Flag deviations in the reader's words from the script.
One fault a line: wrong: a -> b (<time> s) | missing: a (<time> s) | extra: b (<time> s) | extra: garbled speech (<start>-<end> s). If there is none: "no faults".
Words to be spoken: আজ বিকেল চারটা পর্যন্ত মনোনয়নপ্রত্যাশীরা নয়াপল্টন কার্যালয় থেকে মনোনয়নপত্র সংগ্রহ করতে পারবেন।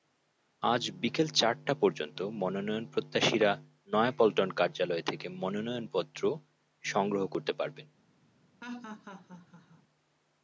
no faults